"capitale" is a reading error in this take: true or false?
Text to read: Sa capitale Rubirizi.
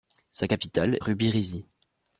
false